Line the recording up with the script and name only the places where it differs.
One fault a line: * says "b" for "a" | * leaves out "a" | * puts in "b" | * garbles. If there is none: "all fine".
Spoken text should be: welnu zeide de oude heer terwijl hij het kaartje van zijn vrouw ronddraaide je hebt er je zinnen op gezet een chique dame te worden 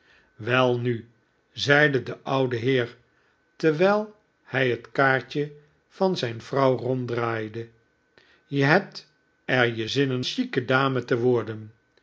* leaves out "op gezet een"